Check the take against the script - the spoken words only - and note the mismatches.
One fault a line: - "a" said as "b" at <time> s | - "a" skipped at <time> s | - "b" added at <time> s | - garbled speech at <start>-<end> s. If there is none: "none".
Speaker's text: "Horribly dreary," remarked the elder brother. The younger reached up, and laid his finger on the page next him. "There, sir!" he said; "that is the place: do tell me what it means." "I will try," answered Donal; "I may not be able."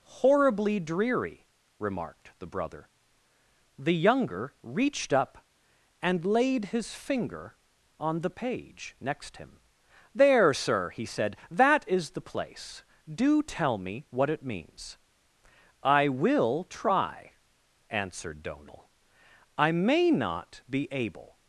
- "elder" skipped at 2.5 s